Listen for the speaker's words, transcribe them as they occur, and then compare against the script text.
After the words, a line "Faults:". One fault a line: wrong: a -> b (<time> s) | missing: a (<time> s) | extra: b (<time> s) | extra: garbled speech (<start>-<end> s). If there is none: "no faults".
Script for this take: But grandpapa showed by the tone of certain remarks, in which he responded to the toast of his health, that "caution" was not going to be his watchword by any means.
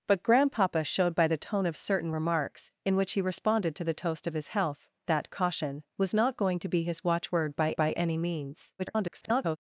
But grandpapa showed by the tone of certain remarks, in which he responded to the toast of his health, that "caution" was not going to be his watchword by by any means. [garbled]
Faults:
extra: by (7.8 s)
extra: garbled speech (8.8-9.6 s)